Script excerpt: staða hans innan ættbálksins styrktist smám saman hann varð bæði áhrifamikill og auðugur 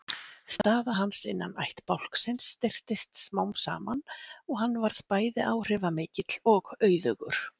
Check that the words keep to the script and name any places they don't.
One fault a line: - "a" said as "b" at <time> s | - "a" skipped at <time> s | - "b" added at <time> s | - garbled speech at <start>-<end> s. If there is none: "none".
- "og" added at 4.2 s